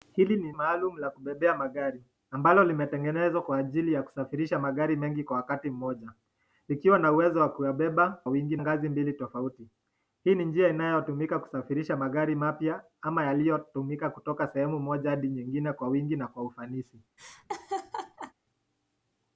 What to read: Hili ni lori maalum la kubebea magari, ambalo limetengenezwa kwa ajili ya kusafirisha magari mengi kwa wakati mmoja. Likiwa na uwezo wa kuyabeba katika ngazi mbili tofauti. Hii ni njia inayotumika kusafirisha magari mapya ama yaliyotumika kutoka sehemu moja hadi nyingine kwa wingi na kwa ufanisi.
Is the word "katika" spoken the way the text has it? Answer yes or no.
no